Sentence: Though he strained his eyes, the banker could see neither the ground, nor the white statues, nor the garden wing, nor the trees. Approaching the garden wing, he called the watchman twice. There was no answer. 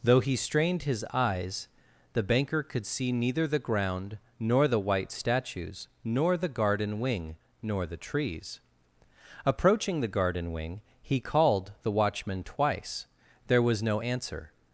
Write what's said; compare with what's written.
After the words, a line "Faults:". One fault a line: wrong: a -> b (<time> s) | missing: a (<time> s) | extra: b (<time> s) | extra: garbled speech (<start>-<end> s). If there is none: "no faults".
Though he strained his eyes, the banker could see neither the ground, nor the white statues, nor the garden wing, nor the trees. Approaching the garden wing, he called the watchman twice. There was no answer.
Faults:
no faults